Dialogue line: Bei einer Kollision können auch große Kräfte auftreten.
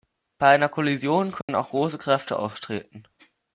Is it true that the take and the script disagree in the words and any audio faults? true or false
true